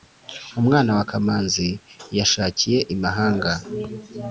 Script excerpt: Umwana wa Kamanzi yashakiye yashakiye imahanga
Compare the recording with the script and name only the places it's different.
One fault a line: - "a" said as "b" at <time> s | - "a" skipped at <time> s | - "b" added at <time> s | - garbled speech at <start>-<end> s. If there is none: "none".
- "yashakiye" skipped at 2.8 s